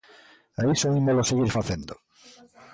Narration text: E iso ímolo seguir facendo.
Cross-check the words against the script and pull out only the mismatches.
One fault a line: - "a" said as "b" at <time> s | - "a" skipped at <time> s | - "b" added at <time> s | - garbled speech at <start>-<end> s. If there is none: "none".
none